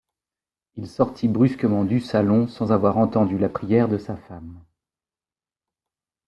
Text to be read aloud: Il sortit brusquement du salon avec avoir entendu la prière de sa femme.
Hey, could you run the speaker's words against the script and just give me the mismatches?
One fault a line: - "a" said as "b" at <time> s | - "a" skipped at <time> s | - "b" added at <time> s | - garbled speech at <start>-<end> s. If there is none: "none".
- "avec" said as "sans" at 2.5 s